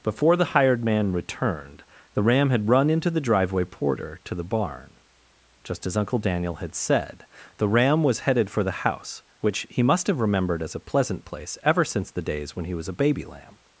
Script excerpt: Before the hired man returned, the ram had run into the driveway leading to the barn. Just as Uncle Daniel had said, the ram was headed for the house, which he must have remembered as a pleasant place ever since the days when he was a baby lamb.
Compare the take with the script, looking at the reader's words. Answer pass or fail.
fail